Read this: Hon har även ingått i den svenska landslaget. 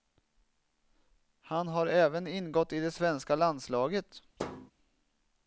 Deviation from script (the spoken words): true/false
true